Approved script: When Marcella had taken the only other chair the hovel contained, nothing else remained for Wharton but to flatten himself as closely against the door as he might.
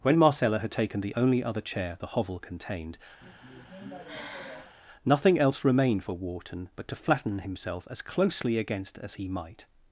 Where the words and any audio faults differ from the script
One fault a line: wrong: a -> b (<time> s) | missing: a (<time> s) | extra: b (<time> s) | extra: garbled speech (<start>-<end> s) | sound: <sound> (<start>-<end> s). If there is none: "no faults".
sound: sigh (3.2-4.8 s)
missing: the door (9.0 s)